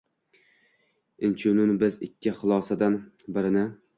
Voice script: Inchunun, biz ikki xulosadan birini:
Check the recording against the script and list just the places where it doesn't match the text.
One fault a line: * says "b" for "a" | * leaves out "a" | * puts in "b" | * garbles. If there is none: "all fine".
all fine